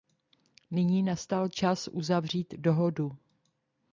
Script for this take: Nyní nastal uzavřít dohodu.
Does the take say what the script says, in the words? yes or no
no